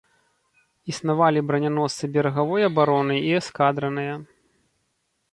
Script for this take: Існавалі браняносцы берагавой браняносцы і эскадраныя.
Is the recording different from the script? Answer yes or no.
yes